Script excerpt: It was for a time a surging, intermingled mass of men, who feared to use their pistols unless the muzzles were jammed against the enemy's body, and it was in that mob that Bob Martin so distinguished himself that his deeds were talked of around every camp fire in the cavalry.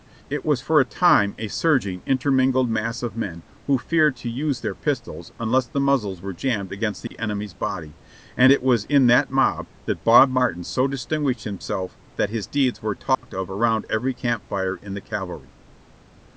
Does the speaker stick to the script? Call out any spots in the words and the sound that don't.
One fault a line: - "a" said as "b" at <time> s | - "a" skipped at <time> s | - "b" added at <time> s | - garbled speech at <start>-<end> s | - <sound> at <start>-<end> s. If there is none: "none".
- dropout at 7.1-7.1 s
- dropout at 13.1-13.2 s